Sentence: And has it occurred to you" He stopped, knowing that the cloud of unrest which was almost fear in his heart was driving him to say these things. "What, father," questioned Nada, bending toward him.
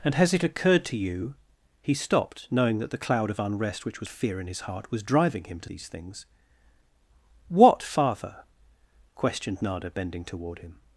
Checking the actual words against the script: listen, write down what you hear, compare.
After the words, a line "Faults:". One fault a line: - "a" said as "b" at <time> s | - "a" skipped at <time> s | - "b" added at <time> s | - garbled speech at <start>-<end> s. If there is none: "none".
And has it occurred to you" He stopped, knowing that the cloud of unrest which was fear in his heart was driving him to these things. "What, father," questioned Nada, bending toward him.
Faults:
- "almost" skipped at 4.1 s
- "say" skipped at 5.7 s